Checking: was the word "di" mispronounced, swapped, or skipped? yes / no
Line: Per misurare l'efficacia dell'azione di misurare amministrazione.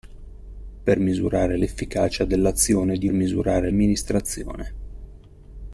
no